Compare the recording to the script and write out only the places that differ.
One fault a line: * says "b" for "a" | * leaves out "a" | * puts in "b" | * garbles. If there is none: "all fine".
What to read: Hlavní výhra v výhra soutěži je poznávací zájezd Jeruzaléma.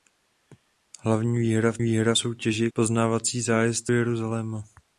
all fine